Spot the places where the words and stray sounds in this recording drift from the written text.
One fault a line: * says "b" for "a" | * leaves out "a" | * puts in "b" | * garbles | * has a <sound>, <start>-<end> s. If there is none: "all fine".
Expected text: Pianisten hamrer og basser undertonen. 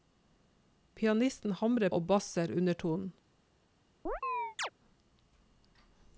* has a chirp, 4.1-4.7 s